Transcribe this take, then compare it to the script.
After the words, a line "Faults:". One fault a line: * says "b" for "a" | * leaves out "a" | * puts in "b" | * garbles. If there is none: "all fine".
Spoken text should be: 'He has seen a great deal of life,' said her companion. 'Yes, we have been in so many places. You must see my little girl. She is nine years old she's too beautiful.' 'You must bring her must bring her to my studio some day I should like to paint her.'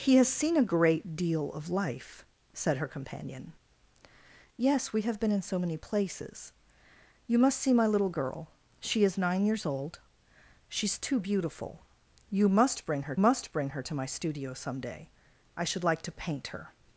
'He has seen a great deal of life,' said her companion. 'Yes, we have been in so many places. You must see my little girl. She is nine years old she's too beautiful.' 'You must bring her must bring her to my studio some day I should like to paint her.'
Faults:
all fine